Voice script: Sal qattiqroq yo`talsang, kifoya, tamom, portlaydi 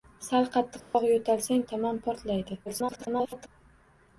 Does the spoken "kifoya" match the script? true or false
false